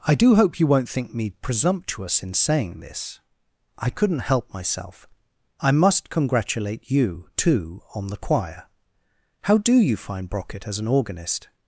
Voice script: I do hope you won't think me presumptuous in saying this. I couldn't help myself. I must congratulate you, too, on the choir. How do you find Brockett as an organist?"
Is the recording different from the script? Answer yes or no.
no